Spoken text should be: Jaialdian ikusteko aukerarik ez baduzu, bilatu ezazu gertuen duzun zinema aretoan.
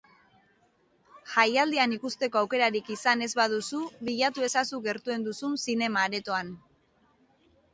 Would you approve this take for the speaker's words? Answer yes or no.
no